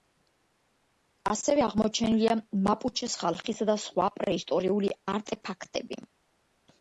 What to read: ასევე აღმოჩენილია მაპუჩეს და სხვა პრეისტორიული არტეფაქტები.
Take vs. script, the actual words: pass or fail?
fail